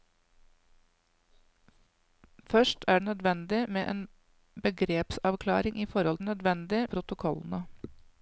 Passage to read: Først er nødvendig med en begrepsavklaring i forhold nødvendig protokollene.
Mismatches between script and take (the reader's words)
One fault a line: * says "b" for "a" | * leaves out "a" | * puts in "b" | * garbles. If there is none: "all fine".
all fine